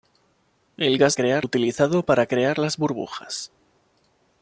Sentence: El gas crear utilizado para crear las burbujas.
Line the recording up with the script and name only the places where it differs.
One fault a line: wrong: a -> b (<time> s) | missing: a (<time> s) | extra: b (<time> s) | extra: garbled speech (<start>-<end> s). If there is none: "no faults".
no faults